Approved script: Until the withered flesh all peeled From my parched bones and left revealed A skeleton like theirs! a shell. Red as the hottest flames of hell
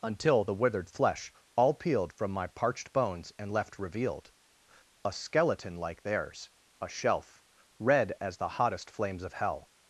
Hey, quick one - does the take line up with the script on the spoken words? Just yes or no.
no